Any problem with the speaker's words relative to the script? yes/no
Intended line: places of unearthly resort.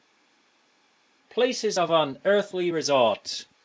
no